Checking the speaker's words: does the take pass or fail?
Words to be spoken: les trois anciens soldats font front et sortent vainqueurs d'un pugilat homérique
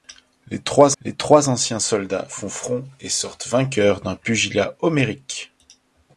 fail